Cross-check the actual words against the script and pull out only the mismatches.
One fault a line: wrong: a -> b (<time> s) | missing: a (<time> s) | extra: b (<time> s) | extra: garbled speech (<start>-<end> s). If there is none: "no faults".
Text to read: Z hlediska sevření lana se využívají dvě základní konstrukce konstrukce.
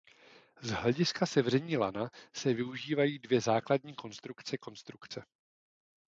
no faults